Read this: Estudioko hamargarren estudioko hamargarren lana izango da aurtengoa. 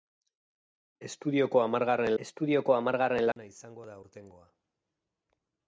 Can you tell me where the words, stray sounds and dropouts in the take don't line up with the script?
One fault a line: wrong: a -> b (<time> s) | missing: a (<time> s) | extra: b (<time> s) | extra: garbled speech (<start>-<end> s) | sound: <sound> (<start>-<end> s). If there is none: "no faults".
sound: dropout (3.3-3.4 s)